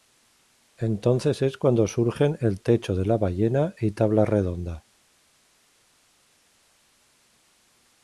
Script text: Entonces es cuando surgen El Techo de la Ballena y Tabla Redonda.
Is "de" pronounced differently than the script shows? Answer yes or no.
no